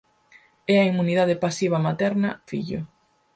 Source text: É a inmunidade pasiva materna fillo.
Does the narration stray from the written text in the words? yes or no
no